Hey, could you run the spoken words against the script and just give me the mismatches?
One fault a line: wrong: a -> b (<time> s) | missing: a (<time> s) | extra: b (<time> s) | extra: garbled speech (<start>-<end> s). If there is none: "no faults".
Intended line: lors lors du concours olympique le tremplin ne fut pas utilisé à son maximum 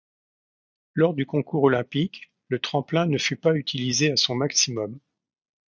missing: lors (1.1 s)